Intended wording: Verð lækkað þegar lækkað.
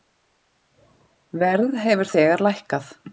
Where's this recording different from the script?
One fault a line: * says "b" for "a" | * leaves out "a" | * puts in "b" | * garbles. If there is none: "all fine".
* says "hefur" for "lækkað"